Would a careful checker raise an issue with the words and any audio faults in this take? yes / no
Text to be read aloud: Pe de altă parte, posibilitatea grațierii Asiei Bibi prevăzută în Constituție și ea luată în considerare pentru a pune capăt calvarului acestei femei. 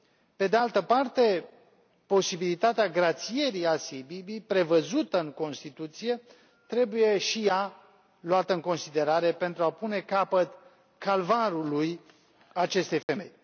yes